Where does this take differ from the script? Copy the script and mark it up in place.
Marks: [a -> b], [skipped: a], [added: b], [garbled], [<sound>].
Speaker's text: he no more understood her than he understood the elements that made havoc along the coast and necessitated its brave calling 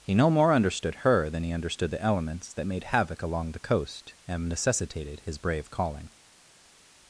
he no more understood her than he understood the elements that made havoc along the coast and necessitated [its -> his] brave calling